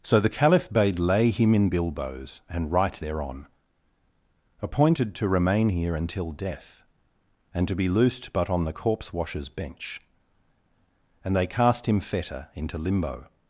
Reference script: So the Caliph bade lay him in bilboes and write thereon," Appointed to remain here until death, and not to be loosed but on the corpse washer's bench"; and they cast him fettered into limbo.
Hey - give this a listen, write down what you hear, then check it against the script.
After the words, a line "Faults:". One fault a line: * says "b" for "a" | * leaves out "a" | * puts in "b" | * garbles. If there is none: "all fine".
So the Caliph bade lay him in bilboes and write thereon," Appointed to remain here until death, and to be loosed but on the corpse washer's bench"; and they cast him fetter into limbo.
Faults:
* leaves out "not"
* says "fetter" for "fettered"